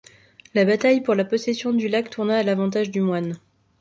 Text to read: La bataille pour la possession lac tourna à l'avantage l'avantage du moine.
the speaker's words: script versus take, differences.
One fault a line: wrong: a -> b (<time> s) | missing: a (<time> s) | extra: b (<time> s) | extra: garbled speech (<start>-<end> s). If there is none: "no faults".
extra: du (1.7 s)
missing: l'avantage (2.9 s)